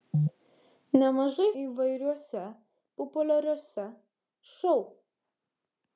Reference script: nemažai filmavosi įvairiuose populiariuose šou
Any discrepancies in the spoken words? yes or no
yes